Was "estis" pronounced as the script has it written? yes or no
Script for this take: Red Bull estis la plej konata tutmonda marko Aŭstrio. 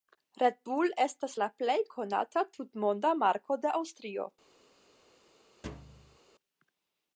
no